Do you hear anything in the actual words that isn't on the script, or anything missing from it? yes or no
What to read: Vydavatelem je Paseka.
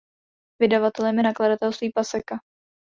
yes